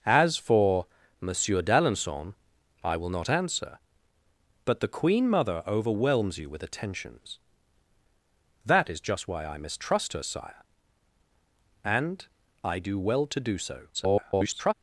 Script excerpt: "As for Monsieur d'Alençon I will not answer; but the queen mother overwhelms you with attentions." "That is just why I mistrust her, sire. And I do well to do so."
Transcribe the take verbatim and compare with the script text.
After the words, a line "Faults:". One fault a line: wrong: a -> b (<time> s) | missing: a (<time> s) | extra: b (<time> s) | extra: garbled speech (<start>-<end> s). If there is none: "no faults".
"As for Monsieur d'Alençon I will not answer; but the queen mother overwhelms you with attentions." "That is just why I mistrust her, sire. And I do well to do so." [garbled]
Faults:
extra: garbled speech (13.9-14.7 s)